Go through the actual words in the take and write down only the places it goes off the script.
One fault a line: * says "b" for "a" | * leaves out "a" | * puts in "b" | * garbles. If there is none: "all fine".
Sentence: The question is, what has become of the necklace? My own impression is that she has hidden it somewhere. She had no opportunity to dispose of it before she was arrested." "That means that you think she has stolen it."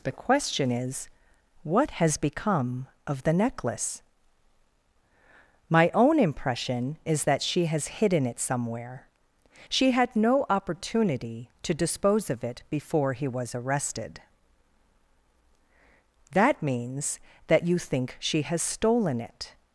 * says "he" for "she"